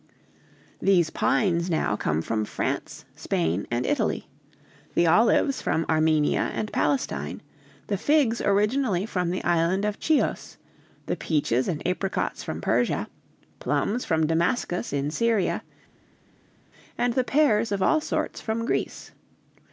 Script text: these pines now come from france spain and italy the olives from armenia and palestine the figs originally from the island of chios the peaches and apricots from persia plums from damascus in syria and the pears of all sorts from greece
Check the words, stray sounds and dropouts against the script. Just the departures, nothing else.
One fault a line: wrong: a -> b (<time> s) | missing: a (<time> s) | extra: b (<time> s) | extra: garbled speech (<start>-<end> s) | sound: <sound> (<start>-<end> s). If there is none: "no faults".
no faults